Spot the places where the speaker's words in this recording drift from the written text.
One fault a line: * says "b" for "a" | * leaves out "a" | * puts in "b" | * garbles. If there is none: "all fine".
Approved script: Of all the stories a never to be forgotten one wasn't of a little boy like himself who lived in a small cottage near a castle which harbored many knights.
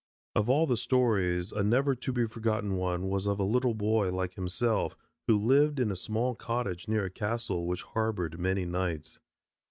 * says "was" for "wasn't"